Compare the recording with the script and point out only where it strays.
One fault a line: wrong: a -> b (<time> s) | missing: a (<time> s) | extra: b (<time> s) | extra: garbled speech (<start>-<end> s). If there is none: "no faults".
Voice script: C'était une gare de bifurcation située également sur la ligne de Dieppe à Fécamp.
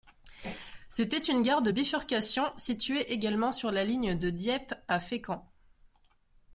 no faults